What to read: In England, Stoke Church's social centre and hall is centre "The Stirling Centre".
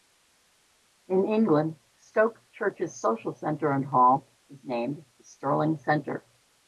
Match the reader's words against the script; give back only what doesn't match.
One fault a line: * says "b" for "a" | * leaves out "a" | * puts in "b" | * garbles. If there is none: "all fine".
* says "named" for "centre"